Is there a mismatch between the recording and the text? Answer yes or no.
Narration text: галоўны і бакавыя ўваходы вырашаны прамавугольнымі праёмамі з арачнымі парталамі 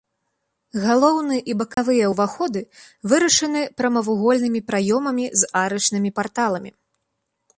no